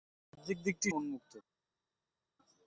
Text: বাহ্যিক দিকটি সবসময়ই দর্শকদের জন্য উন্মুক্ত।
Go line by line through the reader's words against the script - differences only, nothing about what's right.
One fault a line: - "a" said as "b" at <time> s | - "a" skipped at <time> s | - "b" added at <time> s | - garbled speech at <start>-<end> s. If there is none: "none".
- "সবসময়ই দর্শকদের জন্য" skipped at 0.9 s